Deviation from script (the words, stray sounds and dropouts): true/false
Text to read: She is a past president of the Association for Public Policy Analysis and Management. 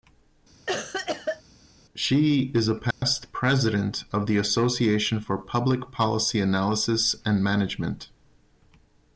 true